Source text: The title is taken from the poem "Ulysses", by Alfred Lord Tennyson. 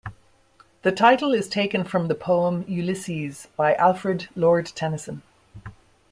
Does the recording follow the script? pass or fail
pass